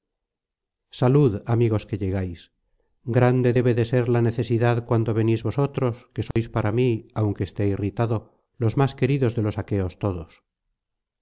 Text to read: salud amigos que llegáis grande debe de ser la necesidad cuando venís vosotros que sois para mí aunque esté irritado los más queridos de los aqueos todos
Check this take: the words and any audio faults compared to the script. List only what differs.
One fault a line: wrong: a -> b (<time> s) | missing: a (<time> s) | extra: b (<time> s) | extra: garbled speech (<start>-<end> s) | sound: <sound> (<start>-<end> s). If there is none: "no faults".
sound: dropout (6.3-6.4 s)